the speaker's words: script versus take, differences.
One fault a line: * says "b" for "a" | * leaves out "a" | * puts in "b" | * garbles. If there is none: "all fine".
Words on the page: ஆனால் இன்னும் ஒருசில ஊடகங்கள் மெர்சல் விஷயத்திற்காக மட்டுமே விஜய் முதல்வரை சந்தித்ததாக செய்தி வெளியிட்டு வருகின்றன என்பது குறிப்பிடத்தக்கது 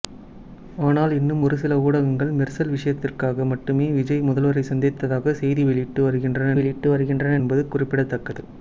* puts in "வெளியிட்டு வருகின்றன"